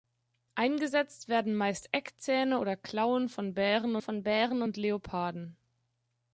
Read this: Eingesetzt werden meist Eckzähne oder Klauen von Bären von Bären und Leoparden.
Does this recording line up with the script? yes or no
yes